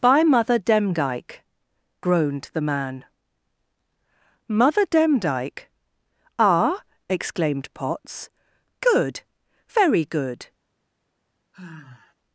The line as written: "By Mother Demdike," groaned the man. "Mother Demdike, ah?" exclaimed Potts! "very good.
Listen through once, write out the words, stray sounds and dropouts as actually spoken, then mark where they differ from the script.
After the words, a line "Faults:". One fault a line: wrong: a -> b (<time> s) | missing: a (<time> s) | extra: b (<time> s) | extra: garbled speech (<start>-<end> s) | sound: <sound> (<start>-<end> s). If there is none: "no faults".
"By Mother Demdike," groaned the man. "Mother Demdike, ah?" exclaimed Potts, "good! very good.
Faults:
extra: good (8.8 s)
sound: sigh (11.5-12.1 s)